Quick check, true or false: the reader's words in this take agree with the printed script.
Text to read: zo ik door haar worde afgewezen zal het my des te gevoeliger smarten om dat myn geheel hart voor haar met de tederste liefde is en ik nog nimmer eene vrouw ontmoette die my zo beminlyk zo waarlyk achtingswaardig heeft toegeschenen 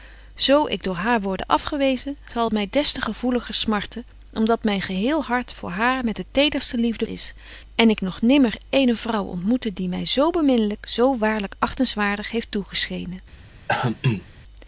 true